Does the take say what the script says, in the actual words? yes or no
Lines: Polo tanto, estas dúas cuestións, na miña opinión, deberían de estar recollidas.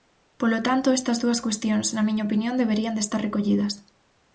yes